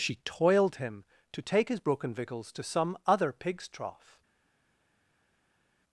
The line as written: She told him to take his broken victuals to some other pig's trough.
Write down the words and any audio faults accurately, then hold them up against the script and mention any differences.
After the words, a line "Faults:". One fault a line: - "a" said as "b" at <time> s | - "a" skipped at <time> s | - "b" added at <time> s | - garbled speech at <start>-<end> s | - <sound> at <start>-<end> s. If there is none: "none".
She toiled him to take his broken victuals to some other pig's trough.
Faults:
- "told" said as "toiled" at 0.2 s